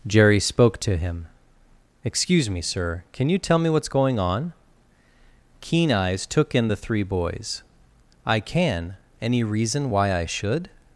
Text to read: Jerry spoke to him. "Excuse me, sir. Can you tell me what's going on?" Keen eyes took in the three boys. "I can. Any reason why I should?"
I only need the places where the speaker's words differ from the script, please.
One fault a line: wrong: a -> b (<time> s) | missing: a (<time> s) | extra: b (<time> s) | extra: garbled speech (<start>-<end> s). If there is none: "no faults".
no faults